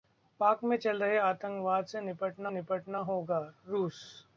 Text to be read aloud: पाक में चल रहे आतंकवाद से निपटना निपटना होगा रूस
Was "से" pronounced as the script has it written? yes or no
yes